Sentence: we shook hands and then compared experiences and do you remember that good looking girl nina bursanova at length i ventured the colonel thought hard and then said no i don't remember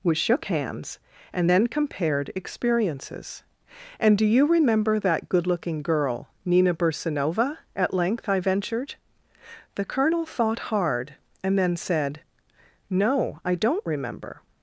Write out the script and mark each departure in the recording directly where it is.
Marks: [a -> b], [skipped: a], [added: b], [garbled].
we shook hands and then compared experiences and do you remember that good looking girl nina bursanova at length i ventured the colonel thought hard and then said no i don't remember